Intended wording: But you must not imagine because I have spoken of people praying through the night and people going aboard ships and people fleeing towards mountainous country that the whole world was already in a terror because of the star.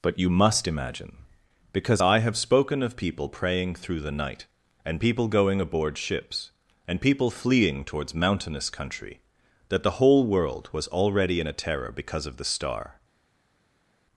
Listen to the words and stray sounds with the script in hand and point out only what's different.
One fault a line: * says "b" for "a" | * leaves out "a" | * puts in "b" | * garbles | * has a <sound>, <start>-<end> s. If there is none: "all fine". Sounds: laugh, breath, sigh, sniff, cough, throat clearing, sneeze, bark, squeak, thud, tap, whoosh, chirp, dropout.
* leaves out "not"